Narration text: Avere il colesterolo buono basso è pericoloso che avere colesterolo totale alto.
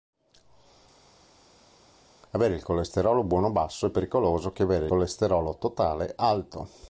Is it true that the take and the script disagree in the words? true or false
false